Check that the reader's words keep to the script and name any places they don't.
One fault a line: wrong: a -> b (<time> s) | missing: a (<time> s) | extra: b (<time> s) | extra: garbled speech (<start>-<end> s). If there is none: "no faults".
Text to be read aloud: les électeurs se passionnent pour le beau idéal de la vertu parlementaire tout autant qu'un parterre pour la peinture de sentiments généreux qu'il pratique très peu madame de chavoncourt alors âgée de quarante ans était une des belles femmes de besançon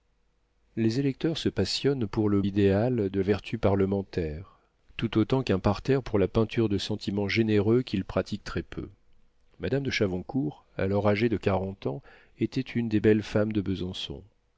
missing: beau (2.4 s)
missing: la (3.2 s)